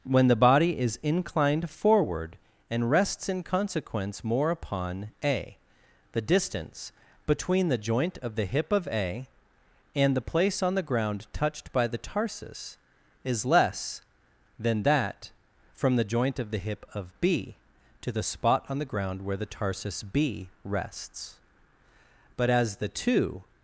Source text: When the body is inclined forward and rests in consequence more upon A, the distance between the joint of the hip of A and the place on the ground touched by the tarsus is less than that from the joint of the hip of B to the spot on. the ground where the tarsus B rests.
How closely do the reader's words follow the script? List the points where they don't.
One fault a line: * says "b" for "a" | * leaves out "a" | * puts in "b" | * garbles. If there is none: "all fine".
* puts in "But as the two"